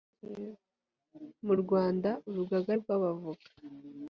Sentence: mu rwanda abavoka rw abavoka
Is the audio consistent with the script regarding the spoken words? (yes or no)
no